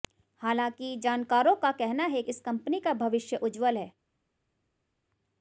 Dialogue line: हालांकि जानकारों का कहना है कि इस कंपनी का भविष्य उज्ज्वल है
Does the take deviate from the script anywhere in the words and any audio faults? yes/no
yes